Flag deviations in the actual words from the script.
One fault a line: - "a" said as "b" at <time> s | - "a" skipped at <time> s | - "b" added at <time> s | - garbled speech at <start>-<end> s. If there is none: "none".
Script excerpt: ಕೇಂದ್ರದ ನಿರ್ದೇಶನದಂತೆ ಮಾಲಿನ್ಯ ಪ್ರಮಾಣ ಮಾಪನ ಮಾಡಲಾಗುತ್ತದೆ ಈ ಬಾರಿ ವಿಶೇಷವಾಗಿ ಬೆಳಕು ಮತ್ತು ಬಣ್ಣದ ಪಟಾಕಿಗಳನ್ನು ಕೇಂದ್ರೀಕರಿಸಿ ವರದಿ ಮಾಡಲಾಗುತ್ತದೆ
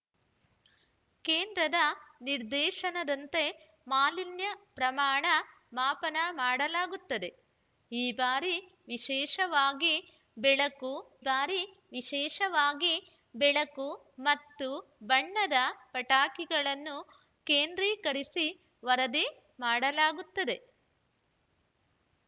- "ಬಾರಿ ವಿಶೇಷವಾಗಿ ಬೆಳಕು" added at 11.2 s